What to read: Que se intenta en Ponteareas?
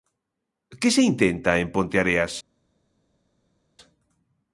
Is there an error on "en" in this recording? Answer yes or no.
no